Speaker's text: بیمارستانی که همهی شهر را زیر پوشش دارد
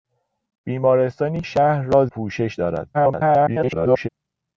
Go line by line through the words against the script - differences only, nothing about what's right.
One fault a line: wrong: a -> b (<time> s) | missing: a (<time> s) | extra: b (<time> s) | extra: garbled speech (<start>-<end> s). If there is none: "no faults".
missing: که همهی (1.4 s)
missing: زیر (2.1 s)
extra: garbled speech (2.9-4.1 s)